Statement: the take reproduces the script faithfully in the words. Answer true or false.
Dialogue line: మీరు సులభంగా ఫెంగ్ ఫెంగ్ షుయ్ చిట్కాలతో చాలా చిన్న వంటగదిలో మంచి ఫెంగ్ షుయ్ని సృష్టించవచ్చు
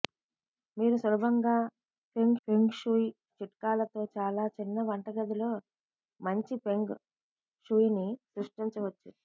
true